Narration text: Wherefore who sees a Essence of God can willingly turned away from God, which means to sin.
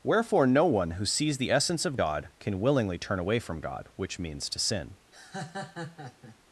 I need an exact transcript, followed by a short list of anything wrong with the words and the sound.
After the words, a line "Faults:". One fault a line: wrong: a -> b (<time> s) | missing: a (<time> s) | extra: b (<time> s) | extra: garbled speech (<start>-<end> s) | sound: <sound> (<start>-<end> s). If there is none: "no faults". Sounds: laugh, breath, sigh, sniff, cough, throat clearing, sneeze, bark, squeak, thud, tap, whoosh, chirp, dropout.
Wherefore no one who sees the Essence of God can willingly turn away from God, which means to sin.
Faults:
extra: no one (0.5 s)
wrong: a -> the (1.4 s)
wrong: turned -> turn (3.0 s)
sound: laugh (5.1-6.4 s)